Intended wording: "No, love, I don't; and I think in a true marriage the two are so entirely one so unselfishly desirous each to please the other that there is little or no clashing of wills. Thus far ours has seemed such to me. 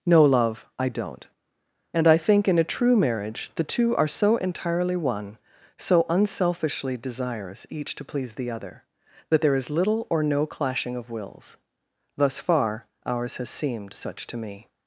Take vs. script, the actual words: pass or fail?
pass